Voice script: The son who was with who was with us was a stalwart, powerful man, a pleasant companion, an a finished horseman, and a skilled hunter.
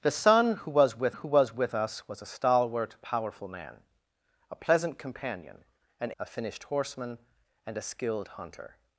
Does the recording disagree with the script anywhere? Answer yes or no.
no